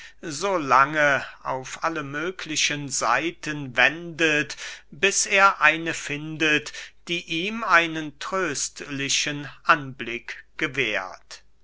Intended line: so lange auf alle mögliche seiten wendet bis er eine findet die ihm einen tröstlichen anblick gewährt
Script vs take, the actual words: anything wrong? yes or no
no